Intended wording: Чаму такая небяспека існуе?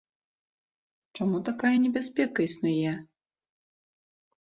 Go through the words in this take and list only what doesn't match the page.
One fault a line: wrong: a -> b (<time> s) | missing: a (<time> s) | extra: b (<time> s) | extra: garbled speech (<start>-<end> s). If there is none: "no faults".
no faults